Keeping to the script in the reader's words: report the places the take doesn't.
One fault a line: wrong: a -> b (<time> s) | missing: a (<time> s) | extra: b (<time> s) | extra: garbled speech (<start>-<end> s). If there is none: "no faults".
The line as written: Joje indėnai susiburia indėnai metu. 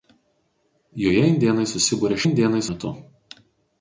no faults